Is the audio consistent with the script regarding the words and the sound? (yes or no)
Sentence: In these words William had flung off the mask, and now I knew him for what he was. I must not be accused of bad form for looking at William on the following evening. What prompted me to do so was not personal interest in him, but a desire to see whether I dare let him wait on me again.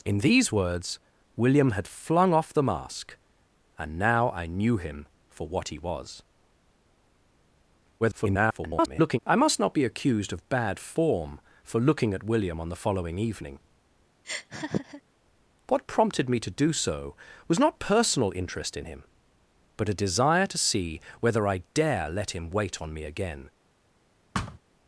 no